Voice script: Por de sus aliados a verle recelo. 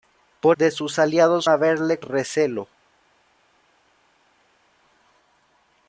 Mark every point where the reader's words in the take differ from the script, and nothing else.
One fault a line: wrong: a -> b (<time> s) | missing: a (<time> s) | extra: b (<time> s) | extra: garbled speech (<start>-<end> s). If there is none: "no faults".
no faults